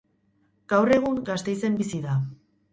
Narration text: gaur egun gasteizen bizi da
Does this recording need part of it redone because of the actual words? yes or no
no